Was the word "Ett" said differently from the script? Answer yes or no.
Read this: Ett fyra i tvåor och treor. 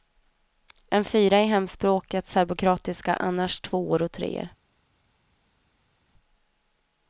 yes